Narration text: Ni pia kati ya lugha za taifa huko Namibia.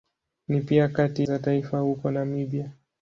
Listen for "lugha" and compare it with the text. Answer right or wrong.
wrong